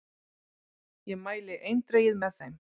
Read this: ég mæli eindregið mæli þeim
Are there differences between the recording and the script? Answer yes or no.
yes